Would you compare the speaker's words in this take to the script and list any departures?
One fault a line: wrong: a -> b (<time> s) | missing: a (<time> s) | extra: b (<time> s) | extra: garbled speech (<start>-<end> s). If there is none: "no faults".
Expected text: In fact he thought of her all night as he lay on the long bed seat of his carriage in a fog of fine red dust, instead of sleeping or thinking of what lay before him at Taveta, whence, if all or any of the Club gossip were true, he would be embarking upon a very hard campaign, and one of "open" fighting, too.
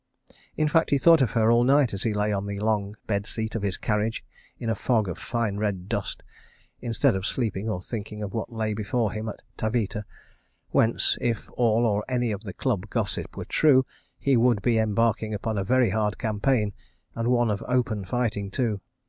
no faults